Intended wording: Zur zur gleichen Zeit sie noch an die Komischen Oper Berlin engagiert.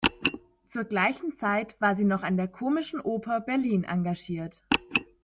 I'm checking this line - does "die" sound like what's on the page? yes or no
no